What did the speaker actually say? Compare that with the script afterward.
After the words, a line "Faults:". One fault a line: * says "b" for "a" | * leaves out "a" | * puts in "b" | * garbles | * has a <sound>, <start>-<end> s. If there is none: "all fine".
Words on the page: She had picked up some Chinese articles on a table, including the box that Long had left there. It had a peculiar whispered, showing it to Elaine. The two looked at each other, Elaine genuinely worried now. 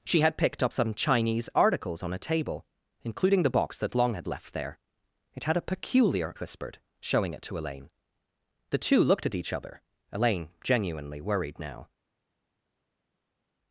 She had picked up some Chinese articles on a table, including the box that Long had left there. It had a peculiar whispered, showing it to Elaine. The two looked at each other, Elaine genuinely worried now.
Faults:
all fine